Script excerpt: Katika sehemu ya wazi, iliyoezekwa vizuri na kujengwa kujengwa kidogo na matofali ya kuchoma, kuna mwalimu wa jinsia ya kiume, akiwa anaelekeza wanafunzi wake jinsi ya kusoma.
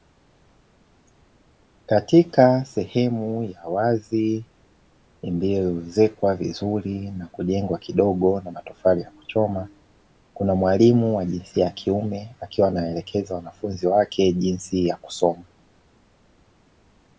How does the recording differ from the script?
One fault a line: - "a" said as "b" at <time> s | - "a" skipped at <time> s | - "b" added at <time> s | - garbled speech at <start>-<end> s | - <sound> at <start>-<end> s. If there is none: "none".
- "kujengwa" skipped at 7.8 s